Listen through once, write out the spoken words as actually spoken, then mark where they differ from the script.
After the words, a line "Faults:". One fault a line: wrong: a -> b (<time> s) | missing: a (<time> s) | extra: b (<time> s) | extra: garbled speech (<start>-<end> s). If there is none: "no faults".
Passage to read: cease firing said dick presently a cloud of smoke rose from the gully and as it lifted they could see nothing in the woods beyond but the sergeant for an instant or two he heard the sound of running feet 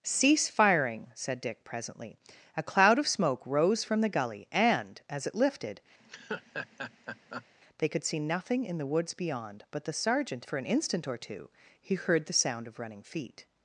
cease firing said dick presently a cloud of smoke rose from the gully and as it lifted they could see nothing in the woods beyond but the sergeant for an instant or two he heard the sound of running feet
Faults:
no faults